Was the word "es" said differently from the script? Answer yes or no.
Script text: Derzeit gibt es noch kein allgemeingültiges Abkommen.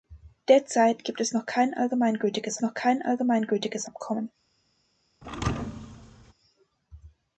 no